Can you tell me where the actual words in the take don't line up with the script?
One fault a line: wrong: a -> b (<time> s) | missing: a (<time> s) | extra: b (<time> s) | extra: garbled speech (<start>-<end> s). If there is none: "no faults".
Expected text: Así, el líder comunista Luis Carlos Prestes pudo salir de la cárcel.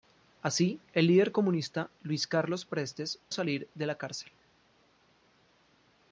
missing: pudo (3.2 s)